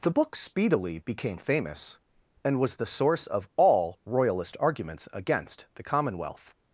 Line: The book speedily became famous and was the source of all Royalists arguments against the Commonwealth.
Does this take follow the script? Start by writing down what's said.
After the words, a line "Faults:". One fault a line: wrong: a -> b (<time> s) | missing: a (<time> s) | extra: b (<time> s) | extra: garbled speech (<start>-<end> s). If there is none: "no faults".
The book speedily became famous and was the source of all Royalist arguments against the Commonwealth.
Faults:
wrong: Royalists -> Royalist (4.1 s)